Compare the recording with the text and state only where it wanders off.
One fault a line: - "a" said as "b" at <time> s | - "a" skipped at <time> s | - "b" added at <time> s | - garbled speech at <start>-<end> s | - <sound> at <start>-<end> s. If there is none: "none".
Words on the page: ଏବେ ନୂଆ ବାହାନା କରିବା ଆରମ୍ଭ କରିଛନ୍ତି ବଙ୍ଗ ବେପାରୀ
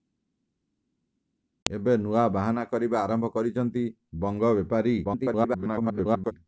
- garbled speech at 5.0-6.3 s